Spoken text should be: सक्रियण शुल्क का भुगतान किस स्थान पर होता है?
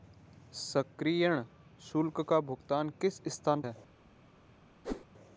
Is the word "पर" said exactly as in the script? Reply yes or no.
no